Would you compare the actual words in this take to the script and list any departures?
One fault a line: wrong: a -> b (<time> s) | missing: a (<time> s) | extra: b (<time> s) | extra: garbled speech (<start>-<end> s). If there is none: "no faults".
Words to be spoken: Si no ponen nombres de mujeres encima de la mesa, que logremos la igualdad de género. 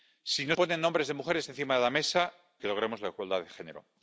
no faults